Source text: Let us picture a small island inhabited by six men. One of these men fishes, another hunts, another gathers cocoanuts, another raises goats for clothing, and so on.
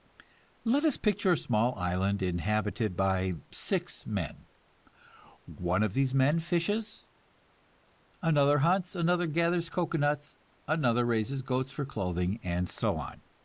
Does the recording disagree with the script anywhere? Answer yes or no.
no